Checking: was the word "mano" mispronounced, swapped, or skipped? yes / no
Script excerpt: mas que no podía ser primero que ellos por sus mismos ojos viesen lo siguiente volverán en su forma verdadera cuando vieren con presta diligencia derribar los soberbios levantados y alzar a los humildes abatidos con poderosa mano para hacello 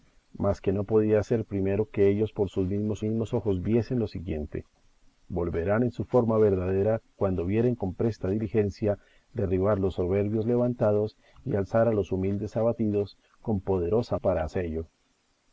yes